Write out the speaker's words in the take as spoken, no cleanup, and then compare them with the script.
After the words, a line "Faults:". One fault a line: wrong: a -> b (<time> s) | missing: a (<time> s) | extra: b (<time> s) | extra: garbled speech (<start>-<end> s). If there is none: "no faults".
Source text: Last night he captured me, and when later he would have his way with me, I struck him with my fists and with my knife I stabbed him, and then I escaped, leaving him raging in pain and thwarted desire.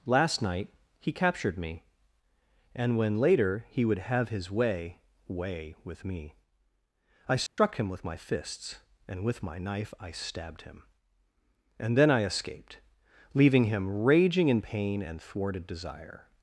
Last night he captured me, and when later he would have his way way with me, I struck him with my fists and with my knife I stabbed him, and then I escaped, leaving him raging in pain and thwarted desire.
Faults:
extra: way (5.3 s)